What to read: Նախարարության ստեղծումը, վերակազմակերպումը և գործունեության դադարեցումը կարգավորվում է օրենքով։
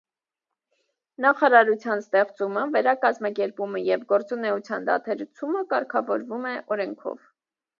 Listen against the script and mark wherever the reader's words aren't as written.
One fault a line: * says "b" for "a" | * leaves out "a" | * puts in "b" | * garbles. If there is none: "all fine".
all fine